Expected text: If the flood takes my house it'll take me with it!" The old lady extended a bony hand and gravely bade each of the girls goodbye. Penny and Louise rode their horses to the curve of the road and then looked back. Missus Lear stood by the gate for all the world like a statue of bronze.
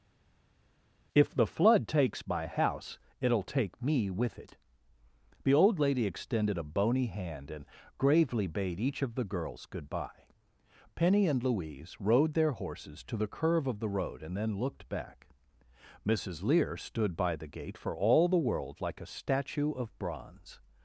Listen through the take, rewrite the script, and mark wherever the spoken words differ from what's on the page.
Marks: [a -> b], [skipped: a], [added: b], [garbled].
If the flood takes my house it'll take me with it!" The old lady extended a bony hand and gravely bade each of the girls goodbye. Penny and Louise rode their horses to the curve of the road and then looked back. Missus Lear stood by the gate for all the world like a statue of bronze.